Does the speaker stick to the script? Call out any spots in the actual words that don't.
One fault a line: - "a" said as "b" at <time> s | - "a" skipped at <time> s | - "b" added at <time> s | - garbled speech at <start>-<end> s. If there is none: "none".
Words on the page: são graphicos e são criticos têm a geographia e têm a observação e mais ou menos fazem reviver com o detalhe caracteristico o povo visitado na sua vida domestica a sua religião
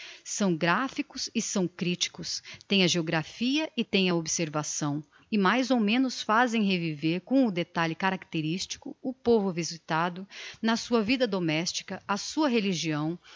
none